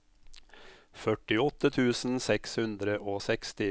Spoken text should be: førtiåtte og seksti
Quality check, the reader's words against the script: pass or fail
fail